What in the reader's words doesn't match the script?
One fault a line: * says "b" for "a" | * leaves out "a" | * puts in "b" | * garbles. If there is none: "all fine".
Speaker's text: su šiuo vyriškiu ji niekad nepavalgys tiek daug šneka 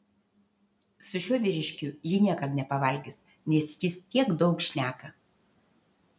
* puts in "nes jis"